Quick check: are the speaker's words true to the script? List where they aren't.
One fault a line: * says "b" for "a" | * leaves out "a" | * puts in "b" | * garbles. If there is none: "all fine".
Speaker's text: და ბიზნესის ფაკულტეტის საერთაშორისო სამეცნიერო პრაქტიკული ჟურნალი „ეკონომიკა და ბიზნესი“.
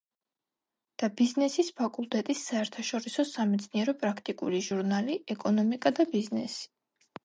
all fine